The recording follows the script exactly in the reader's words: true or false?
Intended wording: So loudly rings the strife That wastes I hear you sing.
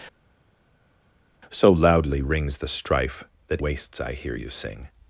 true